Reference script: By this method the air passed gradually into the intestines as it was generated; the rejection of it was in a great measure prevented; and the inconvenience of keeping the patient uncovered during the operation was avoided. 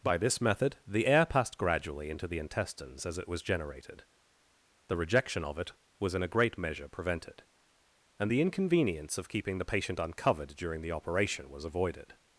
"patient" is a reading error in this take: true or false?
false